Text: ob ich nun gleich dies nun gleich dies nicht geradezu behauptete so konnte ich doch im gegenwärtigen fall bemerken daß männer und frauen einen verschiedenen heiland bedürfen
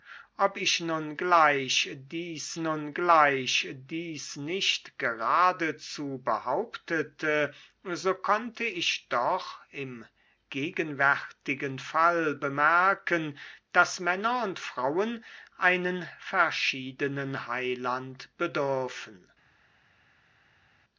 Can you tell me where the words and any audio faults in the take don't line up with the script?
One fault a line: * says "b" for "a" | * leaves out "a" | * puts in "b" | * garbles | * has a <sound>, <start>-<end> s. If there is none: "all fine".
all fine